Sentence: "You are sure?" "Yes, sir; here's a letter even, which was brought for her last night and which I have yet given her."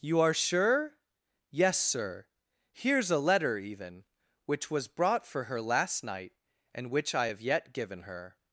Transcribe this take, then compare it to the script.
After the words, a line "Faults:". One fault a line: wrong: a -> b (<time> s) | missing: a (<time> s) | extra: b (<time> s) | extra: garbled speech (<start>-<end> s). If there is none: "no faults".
"You are sure?" "Yes, sir; here's a letter even, which was brought for her last night and which I have yet given her."
Faults:
no faults